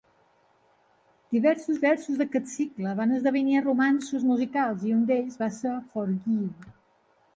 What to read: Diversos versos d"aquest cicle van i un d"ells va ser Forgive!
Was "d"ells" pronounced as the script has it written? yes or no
yes